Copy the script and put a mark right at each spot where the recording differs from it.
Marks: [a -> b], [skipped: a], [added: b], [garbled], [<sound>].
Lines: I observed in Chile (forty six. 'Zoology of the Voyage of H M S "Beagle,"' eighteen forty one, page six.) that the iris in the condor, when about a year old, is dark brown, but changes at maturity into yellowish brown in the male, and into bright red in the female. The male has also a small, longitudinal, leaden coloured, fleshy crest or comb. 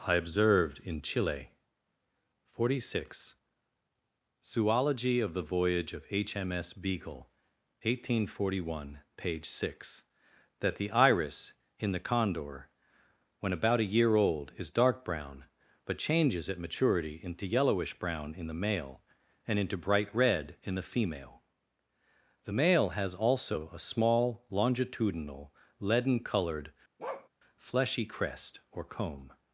I observed in Chile (forty six. 'Zoology of the Voyage of H M S "Beagle,"' eighteen forty one, page six.) that the iris in the condor, when about a year old, is dark brown, but changes at maturity into yellowish brown in the male, and into bright red in the female. The male has also a small, longitudinal, leaden coloured, [bark] fleshy crest or comb.